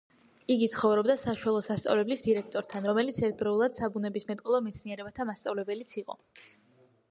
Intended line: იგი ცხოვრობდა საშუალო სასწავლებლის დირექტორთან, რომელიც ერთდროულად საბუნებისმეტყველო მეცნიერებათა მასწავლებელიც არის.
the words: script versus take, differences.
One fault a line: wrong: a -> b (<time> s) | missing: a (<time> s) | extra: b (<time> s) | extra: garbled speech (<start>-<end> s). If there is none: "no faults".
wrong: არის -> იყო (6.0 s)